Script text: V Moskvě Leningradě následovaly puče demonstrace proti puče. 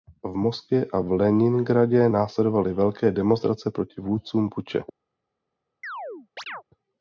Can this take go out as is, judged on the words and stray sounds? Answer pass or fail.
fail